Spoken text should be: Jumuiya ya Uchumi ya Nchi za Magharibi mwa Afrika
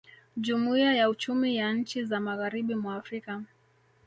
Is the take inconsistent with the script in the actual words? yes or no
no